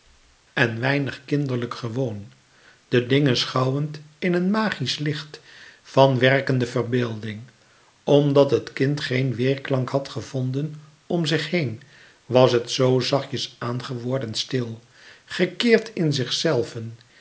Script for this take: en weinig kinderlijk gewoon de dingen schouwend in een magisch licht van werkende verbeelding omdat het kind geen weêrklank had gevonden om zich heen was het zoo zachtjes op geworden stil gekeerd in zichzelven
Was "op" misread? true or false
true